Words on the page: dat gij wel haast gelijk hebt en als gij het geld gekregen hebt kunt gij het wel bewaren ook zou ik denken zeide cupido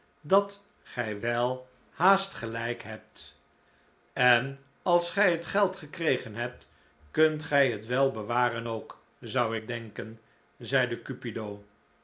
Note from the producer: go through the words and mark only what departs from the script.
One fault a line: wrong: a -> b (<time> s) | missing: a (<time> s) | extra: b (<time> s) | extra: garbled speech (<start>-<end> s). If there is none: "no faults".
no faults